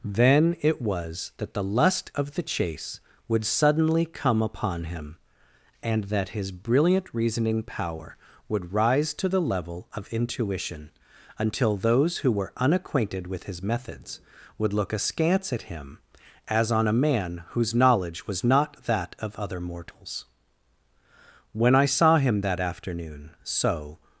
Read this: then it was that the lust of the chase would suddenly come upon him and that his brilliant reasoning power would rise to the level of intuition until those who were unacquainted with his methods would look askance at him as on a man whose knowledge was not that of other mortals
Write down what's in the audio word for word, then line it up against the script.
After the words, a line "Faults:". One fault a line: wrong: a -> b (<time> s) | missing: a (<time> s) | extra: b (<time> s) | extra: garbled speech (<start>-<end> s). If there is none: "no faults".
then it was that the lust of the chase would suddenly come upon him and that his brilliant reasoning power would rise to the level of intuition until those who were unacquainted with his methods would look askance at him as on a man whose knowledge was not that of other mortals when i saw him that afternoon so
Faults:
extra: when i saw him that afternoon so (21.5 s)